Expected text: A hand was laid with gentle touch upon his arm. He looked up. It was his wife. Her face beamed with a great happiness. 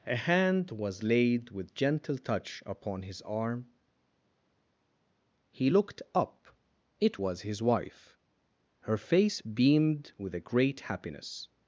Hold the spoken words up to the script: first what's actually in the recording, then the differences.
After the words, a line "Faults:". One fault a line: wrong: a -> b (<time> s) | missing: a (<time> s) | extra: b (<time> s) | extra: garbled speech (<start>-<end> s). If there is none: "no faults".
A hand was laid with gentle touch upon his arm. He looked up. It was his wife. Her face beamed with a great happiness.
Faults:
no faults